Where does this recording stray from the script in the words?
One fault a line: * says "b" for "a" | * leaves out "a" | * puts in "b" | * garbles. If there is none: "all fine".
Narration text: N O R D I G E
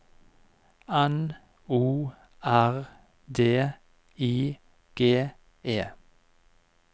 all fine